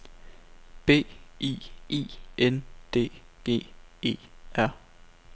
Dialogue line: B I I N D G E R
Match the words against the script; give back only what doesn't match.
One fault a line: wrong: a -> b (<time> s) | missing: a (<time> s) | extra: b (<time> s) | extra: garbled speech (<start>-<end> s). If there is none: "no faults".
no faults